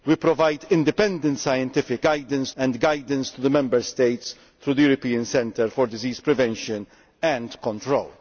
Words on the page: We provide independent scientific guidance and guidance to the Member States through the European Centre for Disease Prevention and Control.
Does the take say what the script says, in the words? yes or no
yes